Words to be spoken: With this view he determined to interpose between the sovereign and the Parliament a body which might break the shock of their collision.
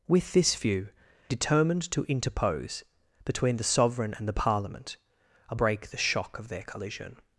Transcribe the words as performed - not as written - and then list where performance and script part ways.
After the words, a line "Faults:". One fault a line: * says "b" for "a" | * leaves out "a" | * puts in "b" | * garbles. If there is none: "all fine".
With this view determined to interpose between the sovereign and the Parliament a break the shock of their collision.
Faults:
* leaves out "he"
* leaves out "body which might"